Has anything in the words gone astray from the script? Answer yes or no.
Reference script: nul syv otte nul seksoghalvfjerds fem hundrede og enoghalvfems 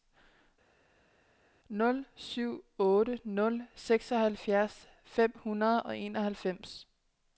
no